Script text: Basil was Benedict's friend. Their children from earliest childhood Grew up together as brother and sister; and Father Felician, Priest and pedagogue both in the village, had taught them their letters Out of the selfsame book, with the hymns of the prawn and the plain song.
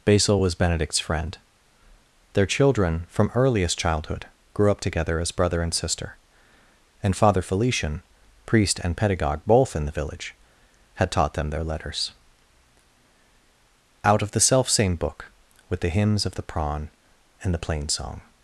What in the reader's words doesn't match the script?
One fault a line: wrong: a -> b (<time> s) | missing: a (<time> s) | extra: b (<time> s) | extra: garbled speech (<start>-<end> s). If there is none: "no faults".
no faults